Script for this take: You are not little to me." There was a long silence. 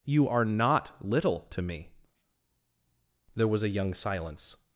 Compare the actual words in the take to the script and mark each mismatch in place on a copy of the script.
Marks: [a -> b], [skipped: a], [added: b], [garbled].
You are not little to me." There was a [long -> young] silence.